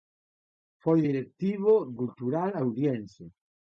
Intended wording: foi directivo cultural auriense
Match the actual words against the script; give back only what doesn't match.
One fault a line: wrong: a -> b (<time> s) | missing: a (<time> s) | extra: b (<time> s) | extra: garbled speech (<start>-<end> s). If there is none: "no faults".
no faults